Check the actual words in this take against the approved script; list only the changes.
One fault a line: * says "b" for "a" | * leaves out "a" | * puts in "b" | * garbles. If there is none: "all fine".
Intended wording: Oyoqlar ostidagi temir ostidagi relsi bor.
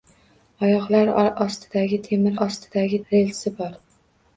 all fine